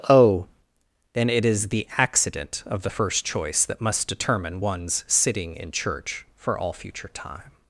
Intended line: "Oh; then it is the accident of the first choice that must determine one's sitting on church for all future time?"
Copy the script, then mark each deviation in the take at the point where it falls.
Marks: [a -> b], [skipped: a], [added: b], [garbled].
"Oh; then it is the accident of the first choice that must determine one's sitting [on -> in] church for all future time?"